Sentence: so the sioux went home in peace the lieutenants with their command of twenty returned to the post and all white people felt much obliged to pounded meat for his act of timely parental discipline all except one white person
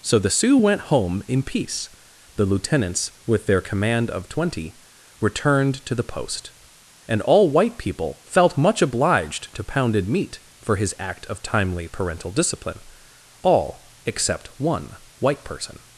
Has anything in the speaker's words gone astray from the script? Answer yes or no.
no